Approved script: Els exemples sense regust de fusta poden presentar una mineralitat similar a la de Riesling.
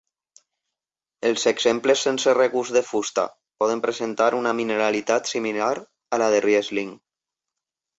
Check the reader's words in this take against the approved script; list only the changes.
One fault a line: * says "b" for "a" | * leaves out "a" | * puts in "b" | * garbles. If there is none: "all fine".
all fine